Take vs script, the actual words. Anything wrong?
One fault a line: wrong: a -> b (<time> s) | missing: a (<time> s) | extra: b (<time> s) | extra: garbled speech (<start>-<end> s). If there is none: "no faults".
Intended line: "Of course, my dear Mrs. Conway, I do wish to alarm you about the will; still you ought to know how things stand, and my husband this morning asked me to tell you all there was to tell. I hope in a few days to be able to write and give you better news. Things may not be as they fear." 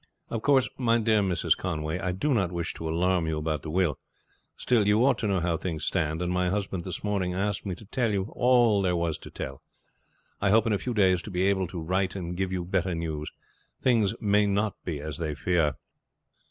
extra: not (2.3 s)